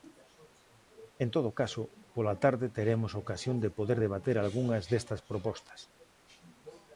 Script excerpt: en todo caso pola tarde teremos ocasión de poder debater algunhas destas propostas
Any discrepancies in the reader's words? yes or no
no